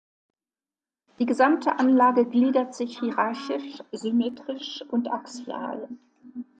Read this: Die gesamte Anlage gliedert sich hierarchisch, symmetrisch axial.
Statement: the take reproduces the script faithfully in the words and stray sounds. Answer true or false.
false